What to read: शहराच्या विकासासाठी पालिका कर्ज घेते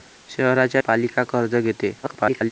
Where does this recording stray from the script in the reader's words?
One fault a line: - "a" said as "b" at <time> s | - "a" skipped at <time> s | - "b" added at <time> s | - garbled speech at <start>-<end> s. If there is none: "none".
- "विकासासाठी" skipped at 0.8 s
- garbled speech at 2.0-2.5 s